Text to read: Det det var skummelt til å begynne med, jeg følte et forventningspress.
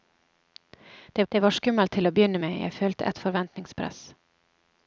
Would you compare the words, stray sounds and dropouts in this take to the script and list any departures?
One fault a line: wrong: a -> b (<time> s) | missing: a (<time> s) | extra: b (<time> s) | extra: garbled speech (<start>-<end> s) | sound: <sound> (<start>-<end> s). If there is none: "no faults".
no faults